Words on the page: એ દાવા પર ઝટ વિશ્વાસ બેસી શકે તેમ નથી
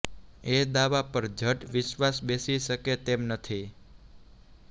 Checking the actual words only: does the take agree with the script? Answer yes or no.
yes